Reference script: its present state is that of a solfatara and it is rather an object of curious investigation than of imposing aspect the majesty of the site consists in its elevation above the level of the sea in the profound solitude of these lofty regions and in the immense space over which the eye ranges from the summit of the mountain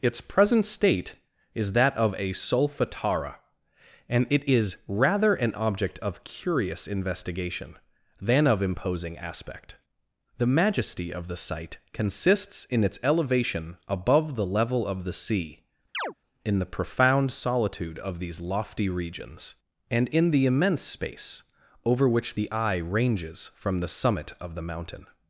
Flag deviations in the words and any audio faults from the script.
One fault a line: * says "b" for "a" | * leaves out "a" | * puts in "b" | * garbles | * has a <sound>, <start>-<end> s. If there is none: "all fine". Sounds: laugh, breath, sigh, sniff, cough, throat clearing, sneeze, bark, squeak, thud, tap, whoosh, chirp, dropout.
* has a chirp, 15.9-16.1 s